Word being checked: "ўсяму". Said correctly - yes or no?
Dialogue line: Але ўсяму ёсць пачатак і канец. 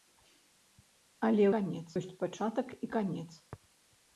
no